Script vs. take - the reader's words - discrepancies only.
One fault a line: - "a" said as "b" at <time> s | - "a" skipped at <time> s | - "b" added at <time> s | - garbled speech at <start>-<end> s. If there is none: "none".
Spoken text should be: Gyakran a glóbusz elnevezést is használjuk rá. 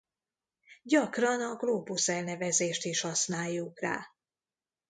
none